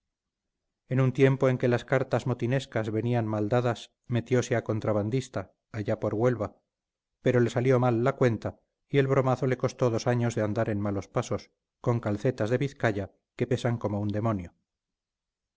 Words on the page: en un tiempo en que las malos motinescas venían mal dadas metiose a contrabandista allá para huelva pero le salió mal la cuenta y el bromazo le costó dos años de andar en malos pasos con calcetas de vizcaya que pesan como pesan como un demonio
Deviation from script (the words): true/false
true